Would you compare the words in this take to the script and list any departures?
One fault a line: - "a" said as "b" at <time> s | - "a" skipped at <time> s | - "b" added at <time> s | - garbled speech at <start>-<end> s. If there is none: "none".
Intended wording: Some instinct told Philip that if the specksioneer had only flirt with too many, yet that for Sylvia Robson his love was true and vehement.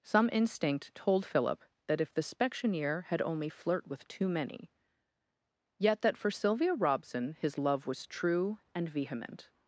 none